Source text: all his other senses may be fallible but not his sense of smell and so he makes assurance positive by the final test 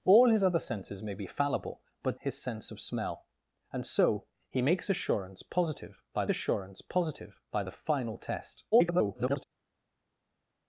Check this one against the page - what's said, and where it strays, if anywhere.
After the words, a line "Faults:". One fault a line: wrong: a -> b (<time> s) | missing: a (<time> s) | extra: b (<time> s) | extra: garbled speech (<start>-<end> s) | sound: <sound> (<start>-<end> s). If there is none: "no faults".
all his other senses may be fallible but his sense of smell and so he makes assurance positive by assurance positive by the final test [garbled]
Faults:
missing: not (2.2 s)
extra: assurance positive by (6.3 s)
extra: garbled speech (8.7-9.4 s)